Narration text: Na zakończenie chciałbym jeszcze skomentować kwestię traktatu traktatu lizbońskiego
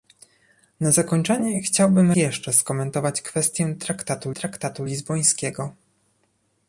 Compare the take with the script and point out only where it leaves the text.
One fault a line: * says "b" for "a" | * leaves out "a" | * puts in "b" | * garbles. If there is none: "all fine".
all fine